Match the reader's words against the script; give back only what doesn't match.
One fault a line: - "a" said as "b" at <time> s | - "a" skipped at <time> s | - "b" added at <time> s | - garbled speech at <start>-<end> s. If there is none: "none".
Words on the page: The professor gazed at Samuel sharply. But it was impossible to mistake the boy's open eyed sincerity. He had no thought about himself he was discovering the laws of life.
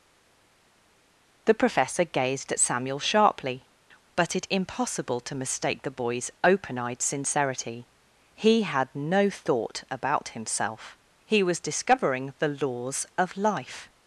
- "was" skipped at 4.5 s